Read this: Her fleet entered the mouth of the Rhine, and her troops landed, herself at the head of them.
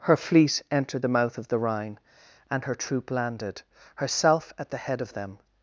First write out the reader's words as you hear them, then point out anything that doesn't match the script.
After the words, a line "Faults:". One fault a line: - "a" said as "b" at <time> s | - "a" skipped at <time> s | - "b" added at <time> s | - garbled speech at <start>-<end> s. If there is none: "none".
Her fleet entered the mouth of the Rhine, and her troop landed, herself at the head of them.
Faults:
- "troops" said as "troop" at 2.7 s